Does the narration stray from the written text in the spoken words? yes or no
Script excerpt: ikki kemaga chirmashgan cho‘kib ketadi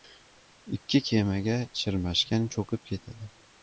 no